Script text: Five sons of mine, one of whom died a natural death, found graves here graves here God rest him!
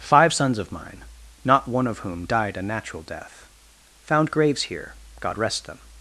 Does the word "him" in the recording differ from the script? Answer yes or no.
yes